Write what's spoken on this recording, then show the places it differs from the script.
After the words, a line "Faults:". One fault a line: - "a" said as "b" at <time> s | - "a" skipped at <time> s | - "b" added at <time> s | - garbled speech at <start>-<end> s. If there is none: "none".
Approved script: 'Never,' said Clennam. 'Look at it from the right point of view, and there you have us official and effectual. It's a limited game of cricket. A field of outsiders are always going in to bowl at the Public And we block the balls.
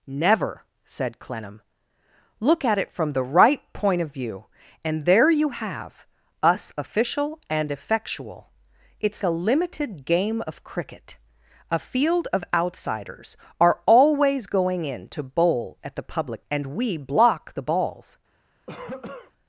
'Never,' said Clennam. 'Look at it from the right point of view, and there you have us official and effectual. It's a limited game of cricket. A field of outsiders are always going in to bowl at the Public And we block the balls.
Faults:
none